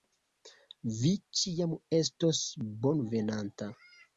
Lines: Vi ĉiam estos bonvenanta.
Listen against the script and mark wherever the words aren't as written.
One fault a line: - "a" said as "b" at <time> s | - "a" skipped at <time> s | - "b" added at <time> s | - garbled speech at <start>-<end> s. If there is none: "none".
none